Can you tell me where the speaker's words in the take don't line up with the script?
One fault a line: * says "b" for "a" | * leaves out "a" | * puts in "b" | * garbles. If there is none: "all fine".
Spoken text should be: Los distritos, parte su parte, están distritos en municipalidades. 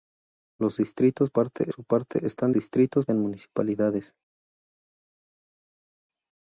all fine